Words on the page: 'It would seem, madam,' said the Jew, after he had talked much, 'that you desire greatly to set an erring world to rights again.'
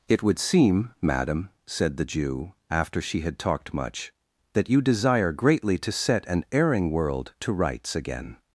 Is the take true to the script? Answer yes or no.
no